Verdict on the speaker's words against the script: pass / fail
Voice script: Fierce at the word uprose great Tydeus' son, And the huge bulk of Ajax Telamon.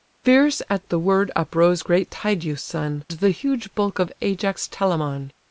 fail